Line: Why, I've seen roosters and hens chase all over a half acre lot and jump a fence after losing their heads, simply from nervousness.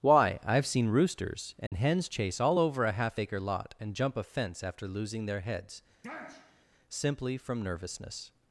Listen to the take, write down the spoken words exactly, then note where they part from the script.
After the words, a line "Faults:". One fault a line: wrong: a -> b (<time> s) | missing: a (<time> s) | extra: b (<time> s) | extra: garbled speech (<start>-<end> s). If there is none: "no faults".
Why, I've seen roosters and hens chase all over a half acre lot and jump a fence after losing their heads, simply from nervousness.
Faults:
no faults